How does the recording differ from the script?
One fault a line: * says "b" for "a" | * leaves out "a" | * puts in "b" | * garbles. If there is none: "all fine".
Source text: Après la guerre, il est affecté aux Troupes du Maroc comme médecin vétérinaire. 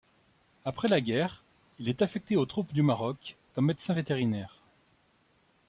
all fine